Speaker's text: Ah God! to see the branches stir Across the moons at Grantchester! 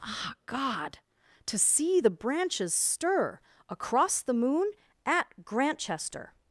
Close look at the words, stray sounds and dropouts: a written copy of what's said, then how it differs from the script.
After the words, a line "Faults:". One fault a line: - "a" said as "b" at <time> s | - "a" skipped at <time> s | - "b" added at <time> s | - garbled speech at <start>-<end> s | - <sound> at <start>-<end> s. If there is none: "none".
Ah God! to see the branches stir Across the moon at Grantchester!
Faults:
- "moons" said as "moon" at 4.3 s